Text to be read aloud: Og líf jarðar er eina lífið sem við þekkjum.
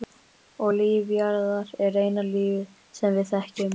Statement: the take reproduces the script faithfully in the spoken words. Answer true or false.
true